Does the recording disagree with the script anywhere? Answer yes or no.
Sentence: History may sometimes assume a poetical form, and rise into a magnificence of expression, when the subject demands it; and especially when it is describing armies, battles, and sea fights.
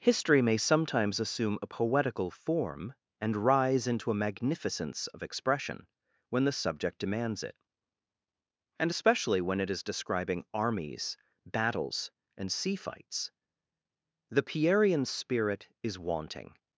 yes